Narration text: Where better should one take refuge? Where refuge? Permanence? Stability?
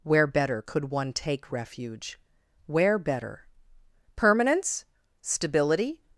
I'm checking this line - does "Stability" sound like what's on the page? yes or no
yes